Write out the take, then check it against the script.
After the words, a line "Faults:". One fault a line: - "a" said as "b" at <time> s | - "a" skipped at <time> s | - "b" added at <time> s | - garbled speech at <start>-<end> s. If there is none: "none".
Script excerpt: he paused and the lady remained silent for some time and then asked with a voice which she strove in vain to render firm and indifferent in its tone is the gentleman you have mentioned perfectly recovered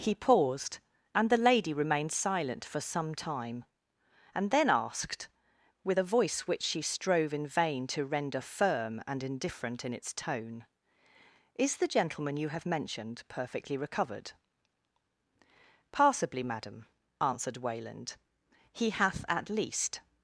he paused and the lady remained silent for some time and then asked with a voice which she strove in vain to render firm and indifferent in its tone is the gentleman you have mentioned perfectly recovered passably madam answered wayland he hath at least
Faults:
- "passably madam answered wayland he hath at least" added at 15.9 s